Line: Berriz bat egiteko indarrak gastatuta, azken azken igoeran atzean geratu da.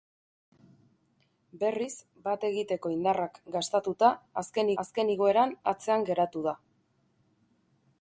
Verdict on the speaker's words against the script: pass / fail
pass